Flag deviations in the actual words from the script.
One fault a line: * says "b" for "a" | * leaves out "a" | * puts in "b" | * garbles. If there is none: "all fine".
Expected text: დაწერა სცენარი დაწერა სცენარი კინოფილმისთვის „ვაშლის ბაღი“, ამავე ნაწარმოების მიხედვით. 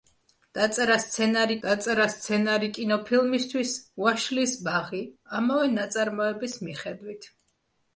all fine